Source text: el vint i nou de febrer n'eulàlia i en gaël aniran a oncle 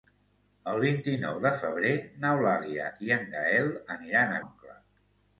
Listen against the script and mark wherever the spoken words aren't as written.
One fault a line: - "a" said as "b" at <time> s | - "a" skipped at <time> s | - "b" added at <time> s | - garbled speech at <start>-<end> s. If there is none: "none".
none